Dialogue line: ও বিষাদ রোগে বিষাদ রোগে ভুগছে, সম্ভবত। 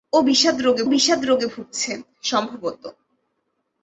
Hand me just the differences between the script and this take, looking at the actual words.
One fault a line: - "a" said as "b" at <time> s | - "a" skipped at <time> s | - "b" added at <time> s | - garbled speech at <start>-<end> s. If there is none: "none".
none